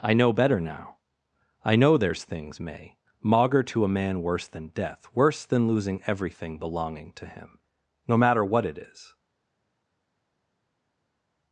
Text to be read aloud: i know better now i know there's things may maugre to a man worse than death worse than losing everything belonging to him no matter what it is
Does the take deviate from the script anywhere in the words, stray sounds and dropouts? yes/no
no